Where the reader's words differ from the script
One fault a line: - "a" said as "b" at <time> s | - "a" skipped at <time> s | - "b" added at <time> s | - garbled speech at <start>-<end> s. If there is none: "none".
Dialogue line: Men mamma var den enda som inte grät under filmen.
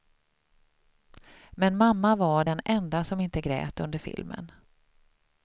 none